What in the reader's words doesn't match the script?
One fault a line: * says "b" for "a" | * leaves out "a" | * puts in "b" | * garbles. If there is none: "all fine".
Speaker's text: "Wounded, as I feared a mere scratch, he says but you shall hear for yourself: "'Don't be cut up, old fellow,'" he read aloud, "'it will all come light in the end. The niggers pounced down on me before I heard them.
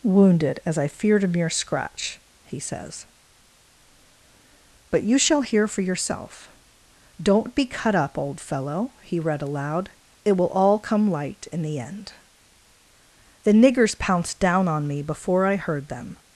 all fine